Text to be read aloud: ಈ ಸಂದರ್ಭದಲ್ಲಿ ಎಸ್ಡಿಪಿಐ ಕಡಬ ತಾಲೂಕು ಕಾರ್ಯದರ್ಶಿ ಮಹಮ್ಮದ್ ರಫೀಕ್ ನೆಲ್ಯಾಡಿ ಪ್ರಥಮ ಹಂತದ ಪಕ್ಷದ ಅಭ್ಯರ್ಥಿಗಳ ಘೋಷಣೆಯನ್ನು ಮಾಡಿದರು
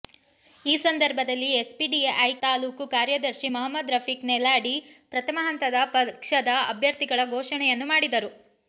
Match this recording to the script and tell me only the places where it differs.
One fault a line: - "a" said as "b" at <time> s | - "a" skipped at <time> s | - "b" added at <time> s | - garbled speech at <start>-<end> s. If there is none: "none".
- "ಕಡಬ" skipped at 2.1 s